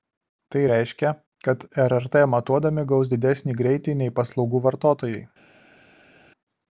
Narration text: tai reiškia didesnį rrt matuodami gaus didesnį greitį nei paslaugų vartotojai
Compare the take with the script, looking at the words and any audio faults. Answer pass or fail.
fail